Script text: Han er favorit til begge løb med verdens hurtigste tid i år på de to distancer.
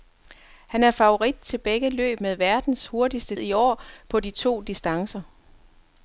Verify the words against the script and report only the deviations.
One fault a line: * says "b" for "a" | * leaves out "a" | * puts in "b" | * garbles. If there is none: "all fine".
* leaves out "tid"